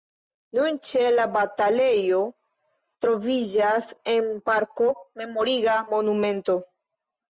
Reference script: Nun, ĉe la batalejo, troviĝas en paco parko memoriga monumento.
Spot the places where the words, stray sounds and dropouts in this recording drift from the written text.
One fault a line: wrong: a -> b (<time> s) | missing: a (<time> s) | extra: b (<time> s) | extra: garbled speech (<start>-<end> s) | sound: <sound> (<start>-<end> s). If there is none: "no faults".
missing: paco (4.3 s)